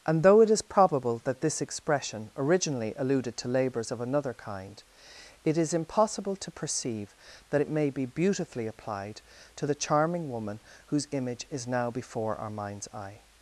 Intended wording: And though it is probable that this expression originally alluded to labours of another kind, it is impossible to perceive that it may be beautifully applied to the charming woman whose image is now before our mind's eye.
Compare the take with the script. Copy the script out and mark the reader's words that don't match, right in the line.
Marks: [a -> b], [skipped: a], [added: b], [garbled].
And though it is probable that this expression originally alluded to labours of another kind, it is impossible to perceive that it may be beautifully applied to the charming woman whose image is now before our mind's eye.